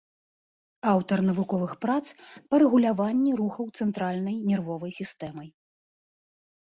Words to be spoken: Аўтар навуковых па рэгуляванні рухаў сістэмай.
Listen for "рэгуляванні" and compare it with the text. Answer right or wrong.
right